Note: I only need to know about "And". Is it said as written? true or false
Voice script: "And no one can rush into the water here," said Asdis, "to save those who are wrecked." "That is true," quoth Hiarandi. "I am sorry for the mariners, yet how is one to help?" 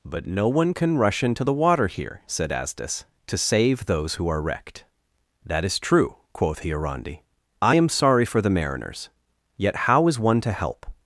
false